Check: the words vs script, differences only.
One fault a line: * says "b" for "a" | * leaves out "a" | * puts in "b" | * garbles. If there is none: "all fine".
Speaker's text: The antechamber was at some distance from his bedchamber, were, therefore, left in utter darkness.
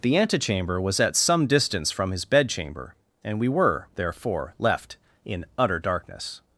* puts in "and we"